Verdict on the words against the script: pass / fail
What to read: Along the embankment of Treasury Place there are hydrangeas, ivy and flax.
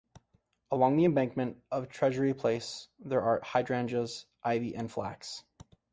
pass